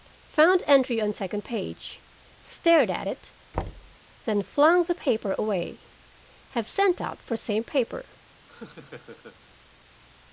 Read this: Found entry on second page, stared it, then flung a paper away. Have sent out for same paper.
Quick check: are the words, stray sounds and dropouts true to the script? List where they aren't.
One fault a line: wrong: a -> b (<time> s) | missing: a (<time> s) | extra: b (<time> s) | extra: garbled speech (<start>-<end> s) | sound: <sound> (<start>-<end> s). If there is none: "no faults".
extra: at (2.9 s)
sound: thud (3.5-4.0 s)
wrong: a -> the (4.8 s)
sound: laugh (8.5-9.4 s)